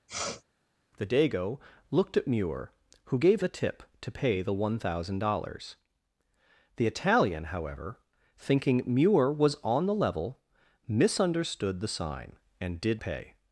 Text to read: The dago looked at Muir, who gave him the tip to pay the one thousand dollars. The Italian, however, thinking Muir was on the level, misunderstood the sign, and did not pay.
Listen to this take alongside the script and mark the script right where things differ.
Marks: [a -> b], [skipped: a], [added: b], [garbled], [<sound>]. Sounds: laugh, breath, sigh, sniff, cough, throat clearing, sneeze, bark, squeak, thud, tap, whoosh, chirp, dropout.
[sniff] The dago looked at Muir, who gave [skipped: him] the tip to pay the one thousand dollars. The Italian, however, thinking Muir was on the level, misunderstood the sign, and did [skipped: not] pay.